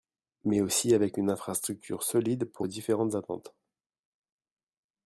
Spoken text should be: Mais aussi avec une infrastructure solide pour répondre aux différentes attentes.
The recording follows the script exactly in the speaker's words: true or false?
false